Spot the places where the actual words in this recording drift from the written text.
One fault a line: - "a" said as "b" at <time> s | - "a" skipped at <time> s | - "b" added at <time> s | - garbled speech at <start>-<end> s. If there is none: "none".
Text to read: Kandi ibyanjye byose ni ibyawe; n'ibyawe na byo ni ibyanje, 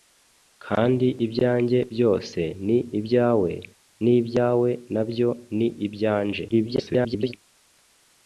- garbled speech at 6.5-7.3 s